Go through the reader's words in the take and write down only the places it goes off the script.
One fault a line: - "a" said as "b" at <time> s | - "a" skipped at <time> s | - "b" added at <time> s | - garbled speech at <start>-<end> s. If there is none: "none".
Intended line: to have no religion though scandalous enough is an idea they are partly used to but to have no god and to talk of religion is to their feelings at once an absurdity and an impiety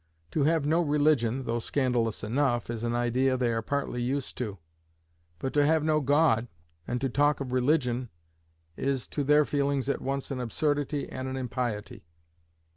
none